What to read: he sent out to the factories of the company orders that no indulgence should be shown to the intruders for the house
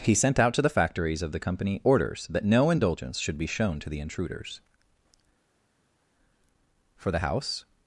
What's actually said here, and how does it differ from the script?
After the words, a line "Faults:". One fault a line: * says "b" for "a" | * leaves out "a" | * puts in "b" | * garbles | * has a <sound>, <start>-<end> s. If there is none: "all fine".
he sent out to the factories of the company orders that no indulgence should be shown to the intruders for the house
Faults:
all fine